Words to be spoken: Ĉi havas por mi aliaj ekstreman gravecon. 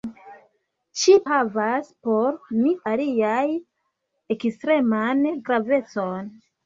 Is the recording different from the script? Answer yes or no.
no